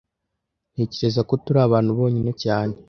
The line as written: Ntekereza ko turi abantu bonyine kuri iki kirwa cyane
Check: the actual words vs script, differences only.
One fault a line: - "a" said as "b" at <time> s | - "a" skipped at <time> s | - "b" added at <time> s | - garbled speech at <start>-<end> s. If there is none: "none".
- "kuri iki kirwa" skipped at 2.3 s